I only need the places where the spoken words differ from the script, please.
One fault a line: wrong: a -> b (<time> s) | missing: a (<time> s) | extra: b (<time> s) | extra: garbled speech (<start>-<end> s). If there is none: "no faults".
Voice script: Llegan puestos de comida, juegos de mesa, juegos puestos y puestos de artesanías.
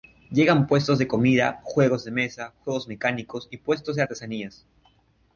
wrong: puestos -> mecánicos (2.9 s)